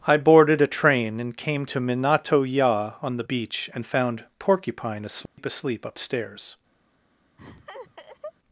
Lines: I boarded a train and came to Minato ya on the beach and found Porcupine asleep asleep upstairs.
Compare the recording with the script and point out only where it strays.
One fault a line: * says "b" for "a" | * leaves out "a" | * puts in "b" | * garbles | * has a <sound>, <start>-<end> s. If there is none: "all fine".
* has a dropout, 5.3-5.4 s
* has a laugh, 7.4-8.3 s